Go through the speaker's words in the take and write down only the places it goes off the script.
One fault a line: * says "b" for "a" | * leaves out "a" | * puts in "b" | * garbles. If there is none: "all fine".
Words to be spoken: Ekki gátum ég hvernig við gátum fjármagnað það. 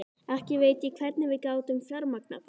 * says "veit" for "gátum"